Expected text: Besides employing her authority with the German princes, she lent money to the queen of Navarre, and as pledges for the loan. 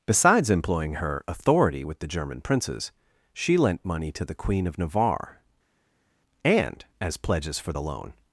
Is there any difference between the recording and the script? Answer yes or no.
no